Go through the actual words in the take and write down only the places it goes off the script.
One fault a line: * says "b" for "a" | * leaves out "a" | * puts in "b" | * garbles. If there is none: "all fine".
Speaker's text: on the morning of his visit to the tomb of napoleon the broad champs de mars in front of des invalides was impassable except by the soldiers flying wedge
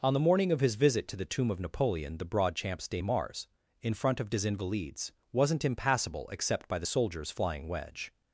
* says "wasn't" for "was"